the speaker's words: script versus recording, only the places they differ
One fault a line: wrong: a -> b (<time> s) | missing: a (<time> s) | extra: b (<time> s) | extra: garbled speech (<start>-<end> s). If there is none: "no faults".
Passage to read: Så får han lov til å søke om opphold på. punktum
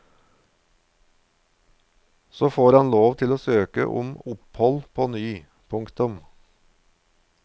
extra: ny (5.1 s)